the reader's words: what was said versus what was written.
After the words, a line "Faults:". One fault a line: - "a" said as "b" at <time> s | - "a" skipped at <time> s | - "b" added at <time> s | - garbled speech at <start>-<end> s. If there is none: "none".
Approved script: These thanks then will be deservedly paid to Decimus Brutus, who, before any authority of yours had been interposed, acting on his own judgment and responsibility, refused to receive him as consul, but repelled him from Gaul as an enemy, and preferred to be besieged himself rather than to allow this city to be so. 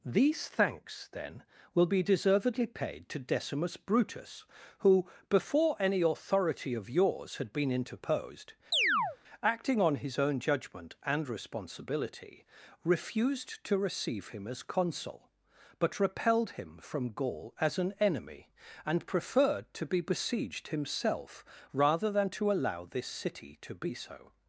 These thanks then will be deservedly paid to Decimus Brutus, who, before any authority of yours had been interposed, acting on his own judgment and responsibility, refused to receive him as consul, but repelled him from Gaul as an enemy, and preferred to be besieged himself rather than to allow this city to be so.
Faults:
none